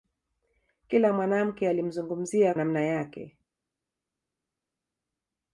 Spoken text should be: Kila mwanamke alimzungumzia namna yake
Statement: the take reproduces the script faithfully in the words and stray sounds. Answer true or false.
true